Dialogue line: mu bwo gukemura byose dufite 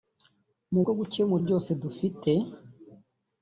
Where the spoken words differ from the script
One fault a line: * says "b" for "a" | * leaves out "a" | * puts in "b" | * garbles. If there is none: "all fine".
all fine